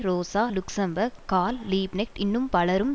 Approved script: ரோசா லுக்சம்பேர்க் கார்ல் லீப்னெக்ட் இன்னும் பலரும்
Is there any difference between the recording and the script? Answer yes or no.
no